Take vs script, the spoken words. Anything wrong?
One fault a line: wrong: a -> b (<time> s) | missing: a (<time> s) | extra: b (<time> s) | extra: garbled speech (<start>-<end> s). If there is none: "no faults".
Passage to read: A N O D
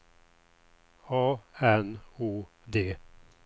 no faults